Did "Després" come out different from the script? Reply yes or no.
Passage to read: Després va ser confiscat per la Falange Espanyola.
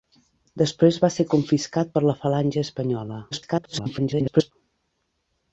no